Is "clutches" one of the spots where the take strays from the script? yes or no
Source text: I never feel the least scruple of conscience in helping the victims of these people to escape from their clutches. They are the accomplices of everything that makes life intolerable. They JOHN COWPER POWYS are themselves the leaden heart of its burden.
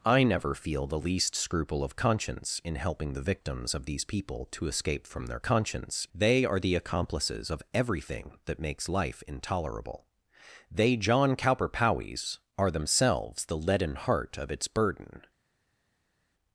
yes